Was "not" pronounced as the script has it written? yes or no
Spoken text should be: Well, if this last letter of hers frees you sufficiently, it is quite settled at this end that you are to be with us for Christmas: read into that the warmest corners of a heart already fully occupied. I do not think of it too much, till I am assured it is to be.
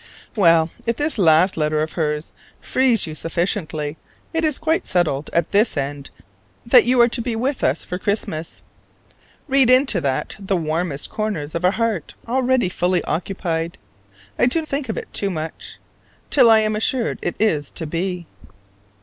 no